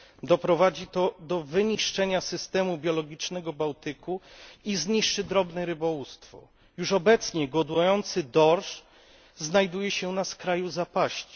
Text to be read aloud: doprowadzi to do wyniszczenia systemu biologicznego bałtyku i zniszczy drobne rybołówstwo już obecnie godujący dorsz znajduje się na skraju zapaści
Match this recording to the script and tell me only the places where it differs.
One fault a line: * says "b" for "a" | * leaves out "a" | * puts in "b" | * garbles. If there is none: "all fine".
all fine